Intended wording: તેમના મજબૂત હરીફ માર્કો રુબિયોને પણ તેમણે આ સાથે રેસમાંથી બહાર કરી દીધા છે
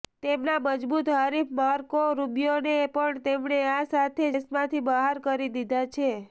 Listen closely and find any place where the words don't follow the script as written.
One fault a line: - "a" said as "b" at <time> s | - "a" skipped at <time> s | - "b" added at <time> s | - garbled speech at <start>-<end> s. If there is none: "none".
none